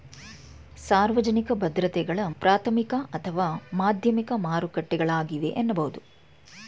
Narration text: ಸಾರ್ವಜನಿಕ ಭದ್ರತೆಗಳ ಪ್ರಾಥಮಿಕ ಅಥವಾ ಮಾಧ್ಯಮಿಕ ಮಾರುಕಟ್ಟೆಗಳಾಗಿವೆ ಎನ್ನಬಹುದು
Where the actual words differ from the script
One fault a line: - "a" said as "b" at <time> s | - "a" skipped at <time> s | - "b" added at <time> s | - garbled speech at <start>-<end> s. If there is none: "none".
none